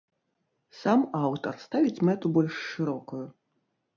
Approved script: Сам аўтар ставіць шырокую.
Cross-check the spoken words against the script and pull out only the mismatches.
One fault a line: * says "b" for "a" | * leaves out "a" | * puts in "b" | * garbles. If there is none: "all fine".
* puts in "мэту больш"